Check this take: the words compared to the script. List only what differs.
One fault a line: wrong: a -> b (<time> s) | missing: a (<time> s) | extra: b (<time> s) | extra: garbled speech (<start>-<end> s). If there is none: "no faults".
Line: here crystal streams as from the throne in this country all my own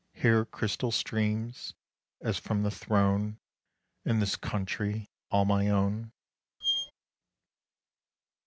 no faults